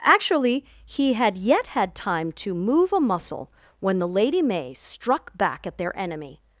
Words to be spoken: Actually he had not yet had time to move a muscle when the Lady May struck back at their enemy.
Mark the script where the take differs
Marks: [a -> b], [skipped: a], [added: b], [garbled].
Actually he had [skipped: not] yet had time to move a muscle when the Lady May struck back at their enemy.